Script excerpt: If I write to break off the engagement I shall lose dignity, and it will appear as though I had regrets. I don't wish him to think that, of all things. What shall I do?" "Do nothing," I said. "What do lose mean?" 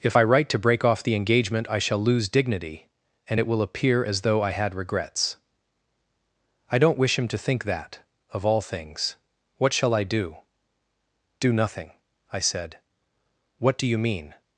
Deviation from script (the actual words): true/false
true